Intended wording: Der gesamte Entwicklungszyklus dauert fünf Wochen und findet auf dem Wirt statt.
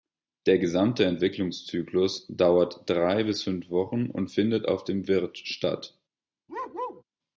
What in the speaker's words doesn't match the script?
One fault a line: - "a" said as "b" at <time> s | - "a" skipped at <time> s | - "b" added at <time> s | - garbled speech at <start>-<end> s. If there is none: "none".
- "drei bis" added at 2.9 s